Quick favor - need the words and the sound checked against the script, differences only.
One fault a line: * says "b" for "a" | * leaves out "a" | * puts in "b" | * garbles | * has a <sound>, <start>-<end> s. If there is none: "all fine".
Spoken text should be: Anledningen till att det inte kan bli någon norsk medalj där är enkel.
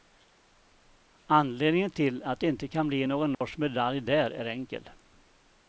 * has a dropout, 3.3-3.4 s